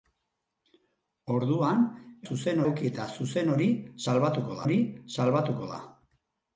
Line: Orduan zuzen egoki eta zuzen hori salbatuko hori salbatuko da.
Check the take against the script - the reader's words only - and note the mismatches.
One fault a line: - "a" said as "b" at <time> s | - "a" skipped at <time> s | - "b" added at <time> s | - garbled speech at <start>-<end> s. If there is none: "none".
none